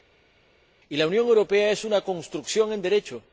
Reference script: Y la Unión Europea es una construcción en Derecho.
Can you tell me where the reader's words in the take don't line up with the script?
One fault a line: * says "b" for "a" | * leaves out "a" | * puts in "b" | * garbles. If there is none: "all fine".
all fine